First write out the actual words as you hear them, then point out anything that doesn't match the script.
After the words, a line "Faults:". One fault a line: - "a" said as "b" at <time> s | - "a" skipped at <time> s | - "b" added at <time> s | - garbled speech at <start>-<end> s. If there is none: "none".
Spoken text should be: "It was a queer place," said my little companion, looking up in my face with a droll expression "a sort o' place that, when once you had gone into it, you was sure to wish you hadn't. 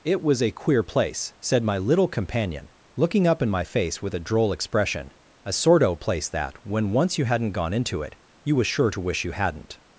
"It was a queer place," said my little companion, looking up in my face with a droll expression "a sort o' place that, when once you hadn't gone into it, you was sure to wish you hadn't.
Faults:
- "had" said as "hadn't" at 7.2 s